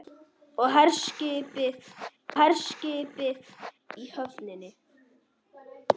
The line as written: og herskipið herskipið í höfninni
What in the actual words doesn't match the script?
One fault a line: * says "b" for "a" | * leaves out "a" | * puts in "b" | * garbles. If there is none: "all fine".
all fine